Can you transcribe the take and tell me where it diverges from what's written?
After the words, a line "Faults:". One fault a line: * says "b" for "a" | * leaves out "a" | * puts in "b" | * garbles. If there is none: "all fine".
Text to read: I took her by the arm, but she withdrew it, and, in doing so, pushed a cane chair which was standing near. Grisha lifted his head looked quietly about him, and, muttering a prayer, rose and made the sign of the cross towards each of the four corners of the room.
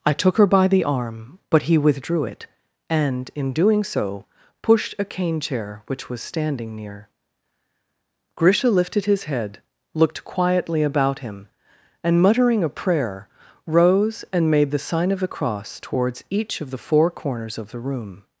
I took her by the arm, but he withdrew it, and, in doing so, pushed a cane chair which was standing near. Grisha lifted his head looked quietly about him, and, muttering a prayer, rose and made the sign of the cross towards each of the four corners of the room.
Faults:
* says "he" for "she"